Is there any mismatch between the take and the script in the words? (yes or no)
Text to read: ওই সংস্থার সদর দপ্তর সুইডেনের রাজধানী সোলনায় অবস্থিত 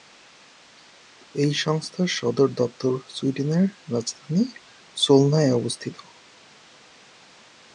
yes